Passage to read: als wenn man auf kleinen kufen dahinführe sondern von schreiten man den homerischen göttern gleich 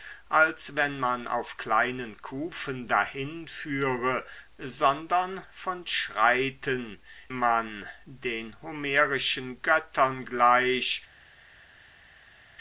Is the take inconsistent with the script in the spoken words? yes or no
no